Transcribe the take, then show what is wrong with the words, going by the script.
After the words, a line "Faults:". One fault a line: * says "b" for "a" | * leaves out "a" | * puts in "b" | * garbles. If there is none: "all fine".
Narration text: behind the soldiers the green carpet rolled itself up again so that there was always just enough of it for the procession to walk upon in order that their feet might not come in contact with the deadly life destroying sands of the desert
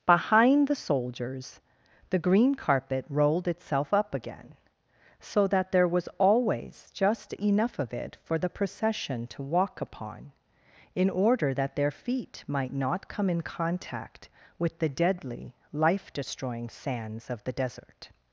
behind the soldiers the green carpet rolled itself up again so that there was always just enough of it for the procession to walk upon in order that their feet might not come in contact with the deadly life destroying sands of the desert
Faults:
all fine